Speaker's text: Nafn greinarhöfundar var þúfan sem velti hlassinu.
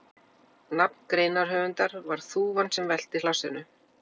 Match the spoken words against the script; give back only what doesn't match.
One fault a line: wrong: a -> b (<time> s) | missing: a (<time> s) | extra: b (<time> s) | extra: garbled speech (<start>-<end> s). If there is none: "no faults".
no faults